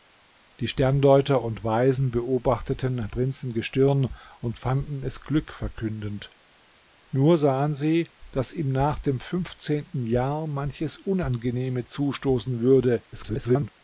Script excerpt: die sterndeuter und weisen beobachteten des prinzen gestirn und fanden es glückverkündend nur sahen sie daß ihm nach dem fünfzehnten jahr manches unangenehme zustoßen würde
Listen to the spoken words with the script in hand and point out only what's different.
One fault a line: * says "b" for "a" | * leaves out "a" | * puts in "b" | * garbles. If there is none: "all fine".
* leaves out "des"
* garbles